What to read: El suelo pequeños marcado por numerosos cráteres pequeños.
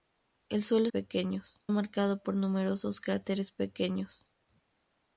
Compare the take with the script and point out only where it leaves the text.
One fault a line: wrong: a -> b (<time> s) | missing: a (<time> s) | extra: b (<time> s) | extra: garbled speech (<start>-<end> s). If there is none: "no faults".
no faults